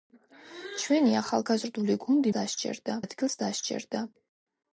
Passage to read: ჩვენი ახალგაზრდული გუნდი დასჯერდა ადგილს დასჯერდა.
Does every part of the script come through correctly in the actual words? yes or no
yes